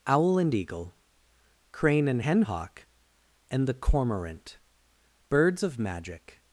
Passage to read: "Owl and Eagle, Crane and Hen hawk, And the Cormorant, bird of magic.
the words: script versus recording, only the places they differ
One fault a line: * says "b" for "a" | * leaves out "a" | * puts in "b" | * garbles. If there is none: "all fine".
* says "birds" for "bird"